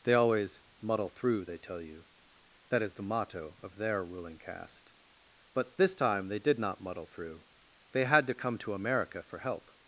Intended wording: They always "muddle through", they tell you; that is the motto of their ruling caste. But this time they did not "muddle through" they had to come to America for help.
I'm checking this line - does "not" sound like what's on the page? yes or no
yes